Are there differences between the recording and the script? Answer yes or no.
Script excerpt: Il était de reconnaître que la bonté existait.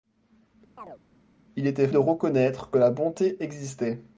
no